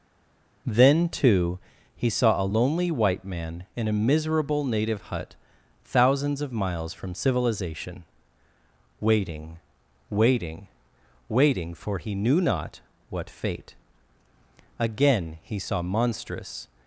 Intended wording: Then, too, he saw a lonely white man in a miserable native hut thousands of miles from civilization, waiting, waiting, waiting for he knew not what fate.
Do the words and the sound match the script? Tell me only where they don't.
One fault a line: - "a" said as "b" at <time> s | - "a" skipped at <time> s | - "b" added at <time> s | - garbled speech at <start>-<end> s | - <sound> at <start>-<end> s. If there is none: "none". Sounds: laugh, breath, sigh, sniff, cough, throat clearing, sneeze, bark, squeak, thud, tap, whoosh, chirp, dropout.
- "Again he saw monstrous" added at 14.8 s